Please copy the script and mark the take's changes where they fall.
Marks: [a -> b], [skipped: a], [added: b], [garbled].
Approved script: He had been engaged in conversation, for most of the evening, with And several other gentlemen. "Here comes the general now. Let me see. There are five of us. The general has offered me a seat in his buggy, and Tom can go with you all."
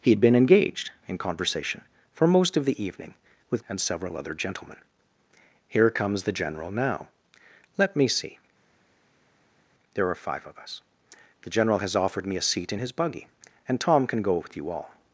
He had been engaged in conversation, for most of the evening, with And several other gentlemen. "Here comes the general now. Let me see. There are five of us. The general has offered me a seat in his buggy, and Tom can go with you all."